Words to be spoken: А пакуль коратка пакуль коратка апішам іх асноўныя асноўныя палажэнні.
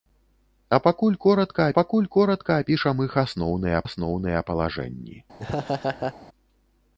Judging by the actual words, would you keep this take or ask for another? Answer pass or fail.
pass